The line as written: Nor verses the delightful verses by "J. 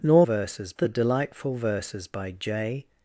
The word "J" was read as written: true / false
true